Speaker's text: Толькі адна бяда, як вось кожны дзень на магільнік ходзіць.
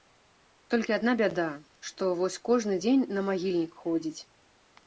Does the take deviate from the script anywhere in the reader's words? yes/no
yes